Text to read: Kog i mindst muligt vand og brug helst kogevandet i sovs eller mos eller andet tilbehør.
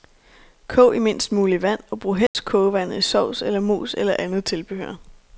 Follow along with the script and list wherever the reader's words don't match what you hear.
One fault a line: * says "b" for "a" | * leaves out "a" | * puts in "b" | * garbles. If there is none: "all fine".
all fine